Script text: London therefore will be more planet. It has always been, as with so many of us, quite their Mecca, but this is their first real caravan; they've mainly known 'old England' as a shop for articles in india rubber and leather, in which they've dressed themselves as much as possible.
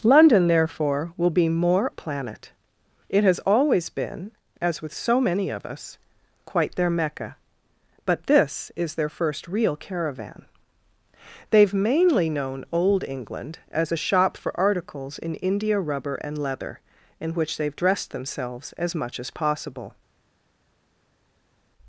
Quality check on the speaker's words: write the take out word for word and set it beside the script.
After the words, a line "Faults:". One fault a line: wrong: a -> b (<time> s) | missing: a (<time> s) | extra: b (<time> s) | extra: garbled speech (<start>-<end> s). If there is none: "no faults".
London therefore will be more planet. It has always been, as with so many of us, quite their Mecca, but this is their first real caravan; they've mainly known 'old England' as a shop for articles in india rubber and leather, in which they've dressed themselves as much as possible.
Faults:
no faults